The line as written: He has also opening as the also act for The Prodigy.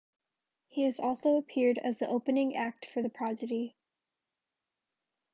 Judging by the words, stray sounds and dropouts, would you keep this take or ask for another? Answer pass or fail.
fail